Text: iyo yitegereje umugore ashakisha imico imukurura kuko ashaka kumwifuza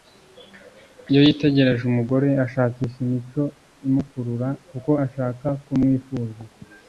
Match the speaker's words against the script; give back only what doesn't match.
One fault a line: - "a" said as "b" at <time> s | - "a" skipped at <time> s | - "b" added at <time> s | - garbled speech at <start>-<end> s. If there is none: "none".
none